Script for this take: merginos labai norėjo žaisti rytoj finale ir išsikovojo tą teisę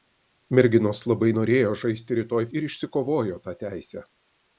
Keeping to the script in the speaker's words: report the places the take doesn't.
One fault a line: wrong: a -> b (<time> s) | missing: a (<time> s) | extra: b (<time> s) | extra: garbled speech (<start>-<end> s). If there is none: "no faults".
missing: finale (2.4 s)